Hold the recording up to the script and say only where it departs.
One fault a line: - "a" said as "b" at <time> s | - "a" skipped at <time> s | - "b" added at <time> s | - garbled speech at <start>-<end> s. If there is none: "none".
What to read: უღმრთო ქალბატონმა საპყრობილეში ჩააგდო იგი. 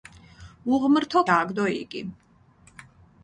- "ქალბატონმა საპყრობილეში" skipped at 1.2 s